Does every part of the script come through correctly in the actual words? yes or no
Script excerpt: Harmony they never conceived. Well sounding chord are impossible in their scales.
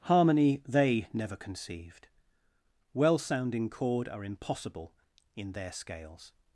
yes